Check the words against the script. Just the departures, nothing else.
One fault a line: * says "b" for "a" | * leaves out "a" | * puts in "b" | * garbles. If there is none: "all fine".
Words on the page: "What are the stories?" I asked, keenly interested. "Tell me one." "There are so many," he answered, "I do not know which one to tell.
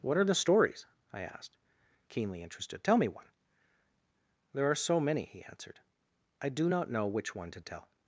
all fine